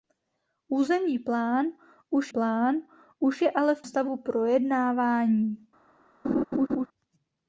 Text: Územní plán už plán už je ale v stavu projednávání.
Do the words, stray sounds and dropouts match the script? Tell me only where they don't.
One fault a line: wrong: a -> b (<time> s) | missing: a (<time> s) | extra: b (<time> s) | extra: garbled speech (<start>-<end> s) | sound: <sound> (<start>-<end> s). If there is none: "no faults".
sound: laugh (6.2-6.9 s)